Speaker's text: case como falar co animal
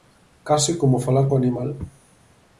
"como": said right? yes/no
yes